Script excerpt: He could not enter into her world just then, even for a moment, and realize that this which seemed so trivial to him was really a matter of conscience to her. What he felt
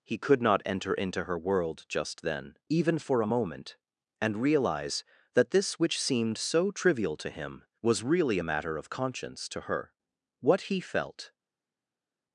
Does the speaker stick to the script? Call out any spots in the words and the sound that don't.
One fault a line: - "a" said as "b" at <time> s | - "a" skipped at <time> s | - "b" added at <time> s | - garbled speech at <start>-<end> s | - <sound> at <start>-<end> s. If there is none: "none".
none